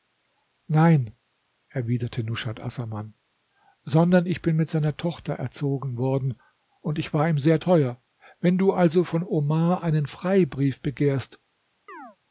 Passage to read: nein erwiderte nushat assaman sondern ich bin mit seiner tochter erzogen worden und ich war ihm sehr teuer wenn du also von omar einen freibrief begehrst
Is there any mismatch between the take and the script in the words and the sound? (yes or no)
yes